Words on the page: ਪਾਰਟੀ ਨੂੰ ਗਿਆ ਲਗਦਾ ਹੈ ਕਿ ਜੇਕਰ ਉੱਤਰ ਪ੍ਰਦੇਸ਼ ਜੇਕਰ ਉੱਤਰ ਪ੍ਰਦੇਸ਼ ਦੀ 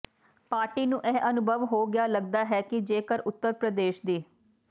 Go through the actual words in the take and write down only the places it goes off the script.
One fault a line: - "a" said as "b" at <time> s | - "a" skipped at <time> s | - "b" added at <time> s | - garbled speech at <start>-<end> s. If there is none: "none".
- "ਇਹ ਅਨੁਭਵ ਹੋ" added at 1.1 s
- "ਜੇਕਰ ਉੱਤਰ ਪ੍ਰਦੇਸ਼" skipped at 4.0 s